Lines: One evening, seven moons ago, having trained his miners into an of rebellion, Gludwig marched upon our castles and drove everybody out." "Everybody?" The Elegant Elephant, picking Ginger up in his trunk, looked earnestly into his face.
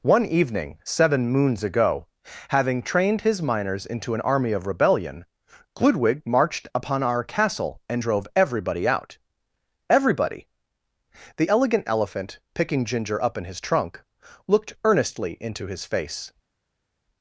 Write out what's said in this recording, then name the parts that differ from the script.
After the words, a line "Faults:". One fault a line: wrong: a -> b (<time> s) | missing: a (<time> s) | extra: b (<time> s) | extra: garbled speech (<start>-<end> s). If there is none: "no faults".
One evening, seven moons ago, having trained his miners into an army of rebellion, Gludwig marched upon our castle and drove everybody out." "Everybody?" The Elegant Elephant, picking Ginger up in his trunk, looked earnestly into his face.
Faults:
extra: army (4.2 s)
wrong: castles -> castle (7.2 s)